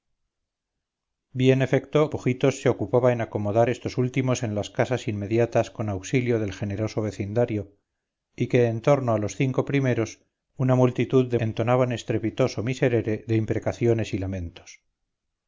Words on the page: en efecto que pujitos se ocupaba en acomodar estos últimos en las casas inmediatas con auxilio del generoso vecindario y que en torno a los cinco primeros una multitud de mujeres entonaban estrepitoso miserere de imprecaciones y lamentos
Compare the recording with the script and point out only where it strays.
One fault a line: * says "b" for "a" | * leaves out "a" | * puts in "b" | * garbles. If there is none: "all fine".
* leaves out "que"
* leaves out "mujeres"